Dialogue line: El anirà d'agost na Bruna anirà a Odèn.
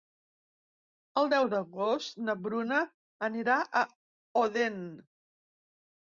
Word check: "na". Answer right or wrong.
right